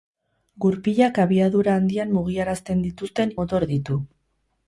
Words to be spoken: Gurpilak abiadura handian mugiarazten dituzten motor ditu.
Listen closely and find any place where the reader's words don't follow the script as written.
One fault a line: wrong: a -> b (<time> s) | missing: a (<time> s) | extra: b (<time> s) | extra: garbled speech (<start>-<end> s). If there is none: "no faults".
no faults